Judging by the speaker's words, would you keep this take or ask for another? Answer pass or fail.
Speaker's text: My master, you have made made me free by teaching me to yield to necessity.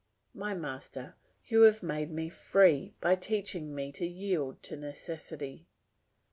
fail